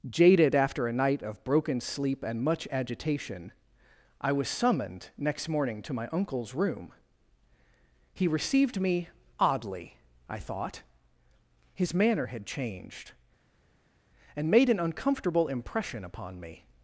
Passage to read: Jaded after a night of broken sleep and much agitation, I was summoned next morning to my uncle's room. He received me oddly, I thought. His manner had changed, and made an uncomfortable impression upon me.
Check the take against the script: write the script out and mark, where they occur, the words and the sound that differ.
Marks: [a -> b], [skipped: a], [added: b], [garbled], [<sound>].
Jaded after a night of broken sleep and much agitation, I was summoned next morning to my uncle's room. He received me oddly, I thought. His manner had changed, and made an uncomfortable impression upon me.